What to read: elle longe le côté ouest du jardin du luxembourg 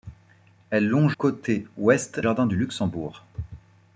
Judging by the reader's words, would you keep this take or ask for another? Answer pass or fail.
fail